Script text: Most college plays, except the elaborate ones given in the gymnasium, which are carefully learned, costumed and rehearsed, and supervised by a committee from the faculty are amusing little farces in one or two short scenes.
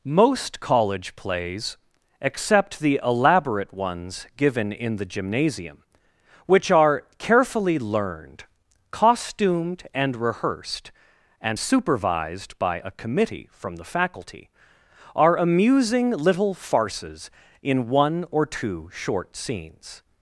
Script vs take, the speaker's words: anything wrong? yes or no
no